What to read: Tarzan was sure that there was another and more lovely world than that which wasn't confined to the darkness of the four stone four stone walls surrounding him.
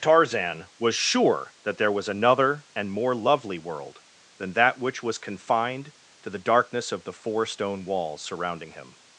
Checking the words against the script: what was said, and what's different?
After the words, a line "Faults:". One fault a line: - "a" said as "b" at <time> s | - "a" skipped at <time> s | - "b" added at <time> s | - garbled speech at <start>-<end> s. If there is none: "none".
Tarzan was sure that there was another and more lovely world than that which was confined to the darkness of the four stone walls surrounding him.
Faults:
- "wasn't" said as "was" at 5.0 s
- "four stone" skipped at 7.8 s